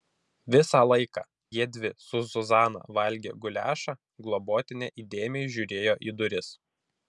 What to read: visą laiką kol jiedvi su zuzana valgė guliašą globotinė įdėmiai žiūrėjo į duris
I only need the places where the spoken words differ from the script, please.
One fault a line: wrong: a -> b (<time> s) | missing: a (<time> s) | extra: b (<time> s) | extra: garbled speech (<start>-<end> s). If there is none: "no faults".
missing: kol (1.2 s)